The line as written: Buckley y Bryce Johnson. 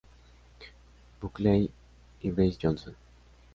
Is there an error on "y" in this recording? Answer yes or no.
no